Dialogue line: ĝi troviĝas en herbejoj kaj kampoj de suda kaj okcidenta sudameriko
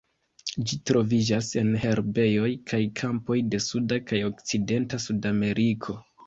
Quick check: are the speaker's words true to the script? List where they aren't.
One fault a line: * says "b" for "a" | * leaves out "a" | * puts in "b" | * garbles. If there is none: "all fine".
all fine